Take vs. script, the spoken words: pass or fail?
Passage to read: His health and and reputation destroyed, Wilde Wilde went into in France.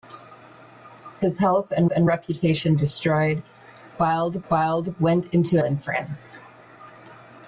pass